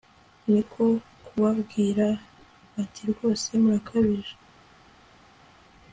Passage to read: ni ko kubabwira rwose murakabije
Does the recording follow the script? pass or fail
fail